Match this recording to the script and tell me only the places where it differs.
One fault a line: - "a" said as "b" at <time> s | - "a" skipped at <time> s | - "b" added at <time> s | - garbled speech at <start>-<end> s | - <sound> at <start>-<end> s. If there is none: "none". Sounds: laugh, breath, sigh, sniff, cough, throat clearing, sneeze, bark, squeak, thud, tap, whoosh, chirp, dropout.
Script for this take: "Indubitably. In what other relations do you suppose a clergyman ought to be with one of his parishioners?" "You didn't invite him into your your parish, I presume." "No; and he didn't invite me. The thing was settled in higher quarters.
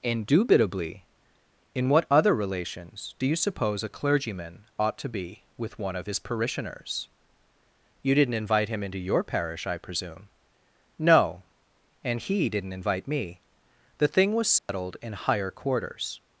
- "your" skipped at 9.2 s
- dropout at 14.6-14.7 s